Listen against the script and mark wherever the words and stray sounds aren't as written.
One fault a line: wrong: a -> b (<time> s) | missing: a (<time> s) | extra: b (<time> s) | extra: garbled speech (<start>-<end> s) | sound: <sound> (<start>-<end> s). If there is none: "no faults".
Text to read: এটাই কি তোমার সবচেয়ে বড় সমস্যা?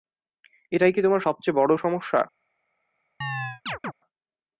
sound: chirp (3.2-3.9 s)